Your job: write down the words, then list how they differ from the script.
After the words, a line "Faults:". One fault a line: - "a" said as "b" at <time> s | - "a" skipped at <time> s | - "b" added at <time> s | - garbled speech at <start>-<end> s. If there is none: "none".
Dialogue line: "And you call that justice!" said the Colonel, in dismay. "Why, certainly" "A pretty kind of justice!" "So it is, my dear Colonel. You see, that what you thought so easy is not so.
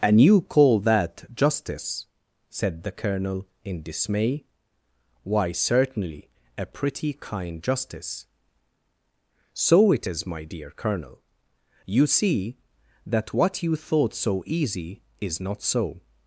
"And you call that justice!" said the Colonel, in dismay. "Why, certainly" "A pretty kind justice!" "So it is, my dear Colonel. You see, that what you thought so easy is not so.
Faults:
- "of" skipped at 7.6 s